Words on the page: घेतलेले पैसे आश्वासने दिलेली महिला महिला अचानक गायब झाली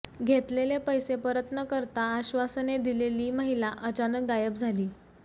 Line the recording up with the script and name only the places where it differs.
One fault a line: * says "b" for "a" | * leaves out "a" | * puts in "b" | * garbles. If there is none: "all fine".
* puts in "परत न करता"
* leaves out "महिला"